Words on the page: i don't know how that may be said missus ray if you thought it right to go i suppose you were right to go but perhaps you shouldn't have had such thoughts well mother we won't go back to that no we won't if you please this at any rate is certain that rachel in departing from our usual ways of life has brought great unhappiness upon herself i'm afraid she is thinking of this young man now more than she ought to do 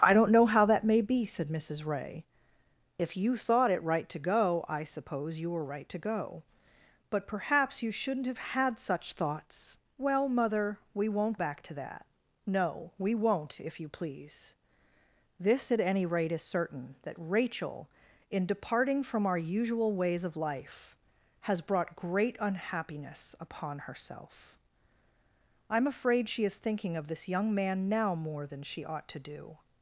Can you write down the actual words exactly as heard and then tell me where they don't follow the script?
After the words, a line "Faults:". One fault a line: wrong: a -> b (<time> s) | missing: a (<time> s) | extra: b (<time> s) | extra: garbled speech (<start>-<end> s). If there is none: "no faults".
i don't know how that may be said missus ray if you thought it right to go i suppose you were right to go but perhaps you shouldn't have had such thoughts well mother we won't back to that no we won't if you please this at any rate is certain that rachel in departing from our usual ways of life has brought great unhappiness upon herself i'm afraid she is thinking of this young man now more than she ought to do
Faults:
missing: go (11.4 s)